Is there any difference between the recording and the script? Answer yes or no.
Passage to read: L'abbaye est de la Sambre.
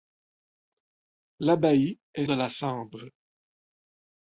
no